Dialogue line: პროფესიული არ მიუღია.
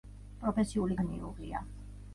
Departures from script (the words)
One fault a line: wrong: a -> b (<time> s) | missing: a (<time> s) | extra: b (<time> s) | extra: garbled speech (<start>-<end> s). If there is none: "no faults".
no faults